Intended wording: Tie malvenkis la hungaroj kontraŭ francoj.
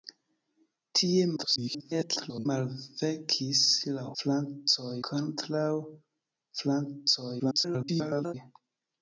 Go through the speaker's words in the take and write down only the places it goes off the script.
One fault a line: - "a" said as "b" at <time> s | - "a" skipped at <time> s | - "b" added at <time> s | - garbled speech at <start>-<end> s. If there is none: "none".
- garbled speech at 1.4-2.5 s
- "hungaroj" said as "francoj" at 4.2 s
- garbled speech at 7.4-8.3 s